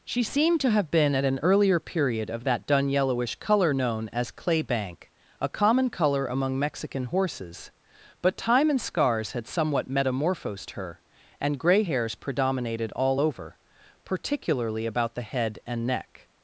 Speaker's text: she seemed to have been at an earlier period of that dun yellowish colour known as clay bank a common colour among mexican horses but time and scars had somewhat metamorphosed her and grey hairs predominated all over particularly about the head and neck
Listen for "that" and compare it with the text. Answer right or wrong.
right